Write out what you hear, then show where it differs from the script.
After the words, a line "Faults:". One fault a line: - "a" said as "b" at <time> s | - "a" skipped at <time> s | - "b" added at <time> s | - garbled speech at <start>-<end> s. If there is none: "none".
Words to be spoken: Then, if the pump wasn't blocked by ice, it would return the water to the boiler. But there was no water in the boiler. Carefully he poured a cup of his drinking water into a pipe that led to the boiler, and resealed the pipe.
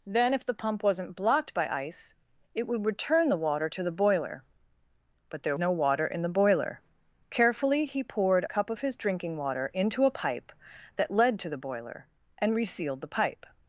Then, if the pump wasn't blocked by ice, it would return the water to the boiler. But there no water in the boiler. Carefully he poured cup of his drinking water into a pipe that led to the boiler, and resealed the pipe.
Faults:
- "was" skipped at 5.6 s
- "a" skipped at 8.4 s